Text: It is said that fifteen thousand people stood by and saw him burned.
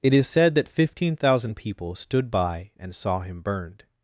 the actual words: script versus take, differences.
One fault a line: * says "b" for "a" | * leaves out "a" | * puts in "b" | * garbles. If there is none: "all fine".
all fine